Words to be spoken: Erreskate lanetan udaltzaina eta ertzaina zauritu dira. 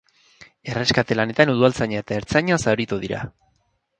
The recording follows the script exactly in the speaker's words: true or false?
true